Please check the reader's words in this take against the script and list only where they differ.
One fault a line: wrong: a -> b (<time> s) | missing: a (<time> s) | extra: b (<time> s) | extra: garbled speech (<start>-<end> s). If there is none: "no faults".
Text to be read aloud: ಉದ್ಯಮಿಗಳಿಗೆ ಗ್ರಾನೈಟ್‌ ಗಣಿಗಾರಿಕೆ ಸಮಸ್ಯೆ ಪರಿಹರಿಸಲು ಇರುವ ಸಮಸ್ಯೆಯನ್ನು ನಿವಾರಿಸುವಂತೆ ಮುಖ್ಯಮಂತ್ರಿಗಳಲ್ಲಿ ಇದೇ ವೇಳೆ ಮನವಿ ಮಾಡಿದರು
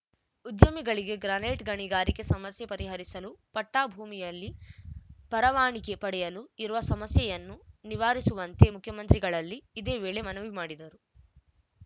extra: ಪಟ್ಟಾಭೂಮಿಯಲ್ಲಿ ಪರವಾನಿಗೆ ಪಡೆಯಲು (3.5 s)